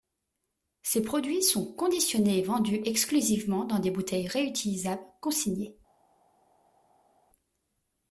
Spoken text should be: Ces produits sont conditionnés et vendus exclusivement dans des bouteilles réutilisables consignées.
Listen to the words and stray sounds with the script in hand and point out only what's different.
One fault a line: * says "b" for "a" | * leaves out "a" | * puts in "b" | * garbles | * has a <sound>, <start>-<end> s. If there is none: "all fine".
all fine